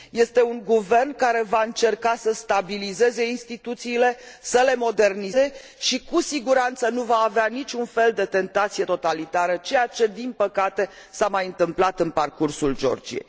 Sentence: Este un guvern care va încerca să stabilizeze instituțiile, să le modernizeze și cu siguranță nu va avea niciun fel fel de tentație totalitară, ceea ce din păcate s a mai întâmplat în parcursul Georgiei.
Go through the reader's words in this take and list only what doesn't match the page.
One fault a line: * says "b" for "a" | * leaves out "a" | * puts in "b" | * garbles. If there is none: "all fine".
* leaves out "fel"